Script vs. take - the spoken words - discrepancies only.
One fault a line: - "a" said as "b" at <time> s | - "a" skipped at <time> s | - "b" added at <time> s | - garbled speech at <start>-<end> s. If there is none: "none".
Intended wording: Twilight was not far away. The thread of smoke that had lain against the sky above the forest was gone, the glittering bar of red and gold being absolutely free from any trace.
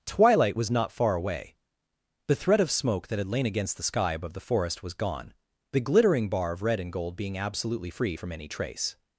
none